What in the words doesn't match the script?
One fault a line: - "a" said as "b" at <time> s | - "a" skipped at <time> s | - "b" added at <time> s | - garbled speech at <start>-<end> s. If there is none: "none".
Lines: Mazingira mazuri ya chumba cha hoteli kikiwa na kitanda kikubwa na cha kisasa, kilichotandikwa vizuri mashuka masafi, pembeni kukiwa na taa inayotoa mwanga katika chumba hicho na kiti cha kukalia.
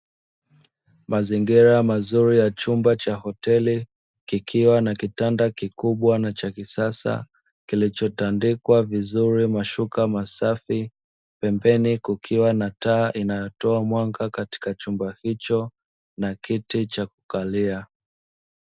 none